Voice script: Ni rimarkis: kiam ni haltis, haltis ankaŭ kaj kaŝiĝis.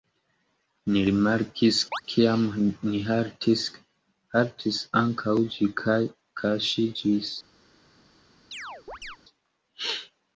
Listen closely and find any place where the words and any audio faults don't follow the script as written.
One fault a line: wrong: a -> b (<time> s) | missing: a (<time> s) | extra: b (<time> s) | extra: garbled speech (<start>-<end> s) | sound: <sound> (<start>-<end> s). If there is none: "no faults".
sound: chirp (1.9-2.0 s)
extra: ĝi (5.6 s)
sound: chirp (8.5-9.2 s)